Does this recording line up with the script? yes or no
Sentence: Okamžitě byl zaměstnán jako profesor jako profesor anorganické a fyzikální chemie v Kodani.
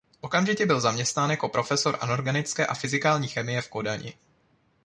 no